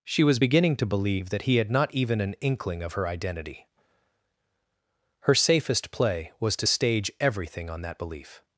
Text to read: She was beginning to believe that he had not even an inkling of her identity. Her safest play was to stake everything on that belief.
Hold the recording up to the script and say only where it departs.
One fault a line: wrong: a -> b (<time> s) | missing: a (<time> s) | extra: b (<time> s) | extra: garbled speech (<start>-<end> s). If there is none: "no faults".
wrong: stake -> stage (6.6 s)